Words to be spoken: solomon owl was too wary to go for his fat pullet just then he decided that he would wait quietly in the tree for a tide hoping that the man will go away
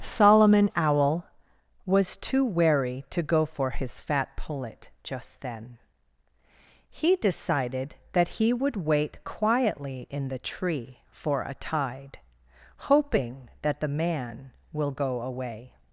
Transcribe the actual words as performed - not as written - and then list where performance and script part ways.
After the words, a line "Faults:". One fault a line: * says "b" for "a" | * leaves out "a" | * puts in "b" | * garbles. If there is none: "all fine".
solomon owl was too wary to go for his fat pullet just then he decided that he would wait quietly in the tree for a tide hoping that the man will go away
Faults:
all fine